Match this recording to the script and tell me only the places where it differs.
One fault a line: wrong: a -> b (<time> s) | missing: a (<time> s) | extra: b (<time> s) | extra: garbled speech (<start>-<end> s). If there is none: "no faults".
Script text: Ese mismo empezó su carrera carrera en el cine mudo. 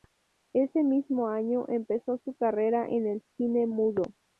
extra: año (1.3 s)
missing: carrera (2.9 s)